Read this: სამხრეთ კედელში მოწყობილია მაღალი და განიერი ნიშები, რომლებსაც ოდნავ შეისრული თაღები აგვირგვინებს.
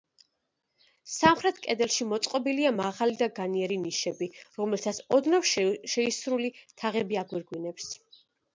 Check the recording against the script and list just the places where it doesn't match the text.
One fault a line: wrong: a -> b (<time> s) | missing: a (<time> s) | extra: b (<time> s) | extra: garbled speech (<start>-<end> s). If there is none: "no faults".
no faults